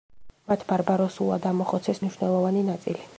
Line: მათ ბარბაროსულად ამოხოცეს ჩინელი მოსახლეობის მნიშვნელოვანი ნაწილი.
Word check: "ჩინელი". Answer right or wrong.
wrong